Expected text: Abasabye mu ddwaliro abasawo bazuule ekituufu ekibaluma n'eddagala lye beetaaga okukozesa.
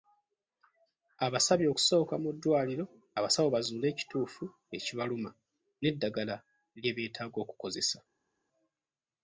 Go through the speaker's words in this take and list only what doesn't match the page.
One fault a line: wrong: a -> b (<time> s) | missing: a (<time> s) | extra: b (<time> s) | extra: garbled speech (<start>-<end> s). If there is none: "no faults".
extra: okusooka (1.7 s)